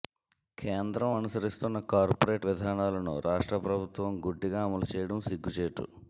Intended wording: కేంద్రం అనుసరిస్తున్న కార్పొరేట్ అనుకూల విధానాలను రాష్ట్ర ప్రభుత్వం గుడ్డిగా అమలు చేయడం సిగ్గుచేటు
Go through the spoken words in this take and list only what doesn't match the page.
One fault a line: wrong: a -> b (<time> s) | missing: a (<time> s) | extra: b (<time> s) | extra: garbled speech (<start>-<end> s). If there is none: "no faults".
missing: అనుకూల (2.5 s)